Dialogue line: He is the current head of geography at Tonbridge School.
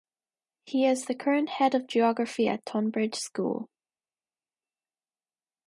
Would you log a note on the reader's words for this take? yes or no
no